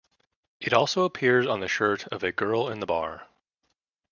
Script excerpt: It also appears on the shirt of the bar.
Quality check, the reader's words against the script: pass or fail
fail